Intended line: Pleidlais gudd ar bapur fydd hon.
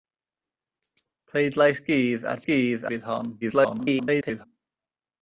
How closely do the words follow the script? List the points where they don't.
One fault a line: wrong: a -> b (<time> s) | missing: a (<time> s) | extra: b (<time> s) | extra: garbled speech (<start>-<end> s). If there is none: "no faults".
wrong: bapur -> gudd (2.5 s)
extra: garbled speech (3.4-4.5 s)